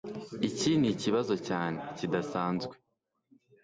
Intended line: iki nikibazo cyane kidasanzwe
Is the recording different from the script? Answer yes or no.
no